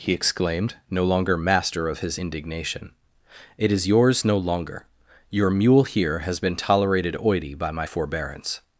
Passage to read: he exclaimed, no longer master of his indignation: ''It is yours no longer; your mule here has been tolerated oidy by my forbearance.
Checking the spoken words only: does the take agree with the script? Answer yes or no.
yes